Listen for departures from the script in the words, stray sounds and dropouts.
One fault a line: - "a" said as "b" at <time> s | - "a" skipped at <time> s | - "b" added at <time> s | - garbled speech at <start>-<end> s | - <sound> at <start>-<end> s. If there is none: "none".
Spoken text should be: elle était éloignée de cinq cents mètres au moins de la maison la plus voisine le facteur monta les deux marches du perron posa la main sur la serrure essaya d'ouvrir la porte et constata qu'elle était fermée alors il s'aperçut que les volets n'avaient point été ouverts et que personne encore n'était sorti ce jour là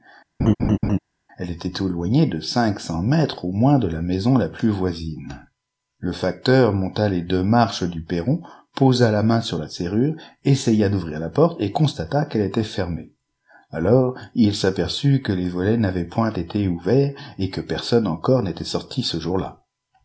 - laugh at 0.4-1.0 s